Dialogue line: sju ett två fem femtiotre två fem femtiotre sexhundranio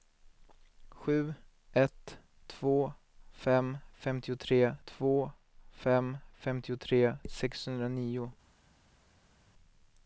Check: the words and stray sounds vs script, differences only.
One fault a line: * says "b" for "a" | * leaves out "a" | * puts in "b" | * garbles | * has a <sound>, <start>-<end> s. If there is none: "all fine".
all fine